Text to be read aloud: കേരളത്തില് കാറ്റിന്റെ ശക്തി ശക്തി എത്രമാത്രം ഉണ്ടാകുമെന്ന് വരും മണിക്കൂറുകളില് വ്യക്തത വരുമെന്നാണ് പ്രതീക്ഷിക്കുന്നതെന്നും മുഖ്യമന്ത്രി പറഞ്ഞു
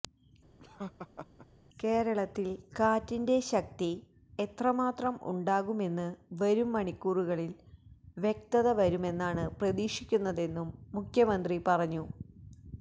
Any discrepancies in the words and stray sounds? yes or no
yes